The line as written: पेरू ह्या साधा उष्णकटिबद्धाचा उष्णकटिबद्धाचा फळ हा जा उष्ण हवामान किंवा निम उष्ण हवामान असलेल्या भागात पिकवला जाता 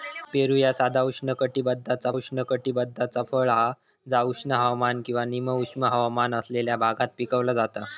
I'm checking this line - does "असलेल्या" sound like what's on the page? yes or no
yes